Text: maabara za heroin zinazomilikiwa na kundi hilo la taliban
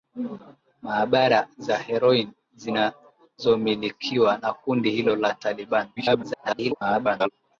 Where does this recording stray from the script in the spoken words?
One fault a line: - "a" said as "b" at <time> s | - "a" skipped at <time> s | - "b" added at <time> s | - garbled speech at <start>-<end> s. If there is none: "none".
- garbled speech at 6.0-7.3 s